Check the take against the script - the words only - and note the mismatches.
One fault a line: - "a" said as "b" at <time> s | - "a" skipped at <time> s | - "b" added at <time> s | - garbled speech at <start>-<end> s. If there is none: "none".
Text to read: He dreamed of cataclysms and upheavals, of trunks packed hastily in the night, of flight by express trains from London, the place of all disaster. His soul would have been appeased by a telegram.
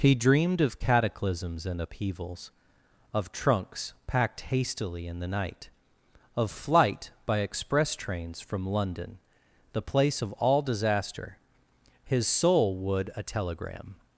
- "have been appeased by" skipped at 13.1 s